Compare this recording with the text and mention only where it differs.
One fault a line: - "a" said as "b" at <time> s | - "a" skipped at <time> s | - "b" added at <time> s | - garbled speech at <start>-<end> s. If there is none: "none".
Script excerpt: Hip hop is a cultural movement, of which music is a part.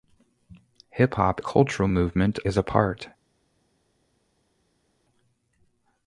- "is" skipped at 1.4 s
- "of which music" skipped at 2.4 s